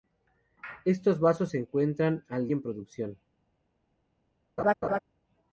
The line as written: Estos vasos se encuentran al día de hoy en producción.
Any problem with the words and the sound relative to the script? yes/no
yes